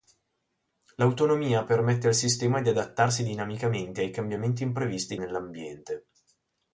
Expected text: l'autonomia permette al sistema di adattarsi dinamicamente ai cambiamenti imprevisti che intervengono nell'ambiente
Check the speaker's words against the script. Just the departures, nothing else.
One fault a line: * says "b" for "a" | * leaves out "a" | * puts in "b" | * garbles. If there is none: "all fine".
* leaves out "che intervengono"